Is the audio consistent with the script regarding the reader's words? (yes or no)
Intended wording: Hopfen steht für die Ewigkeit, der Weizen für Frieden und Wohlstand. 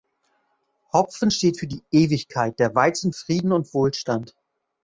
no